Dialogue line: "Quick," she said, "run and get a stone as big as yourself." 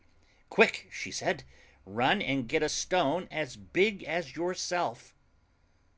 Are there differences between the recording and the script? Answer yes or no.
no